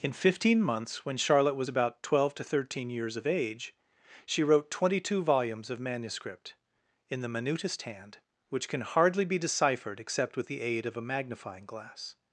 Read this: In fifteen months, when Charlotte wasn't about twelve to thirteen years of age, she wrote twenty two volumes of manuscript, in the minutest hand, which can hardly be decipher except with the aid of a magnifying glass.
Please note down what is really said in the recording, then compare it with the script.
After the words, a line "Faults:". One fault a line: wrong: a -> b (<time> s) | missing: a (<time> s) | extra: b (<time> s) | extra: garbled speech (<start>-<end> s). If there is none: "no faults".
In fifteen months, when Charlotte was about twelve to thirteen years of age, she wrote twenty two volumes of manuscript, in the minutest hand, which can hardly be deciphered except with the aid of a magnifying glass.
Faults:
wrong: wasn't -> was (1.6 s)
wrong: decipher -> deciphered (9.4 s)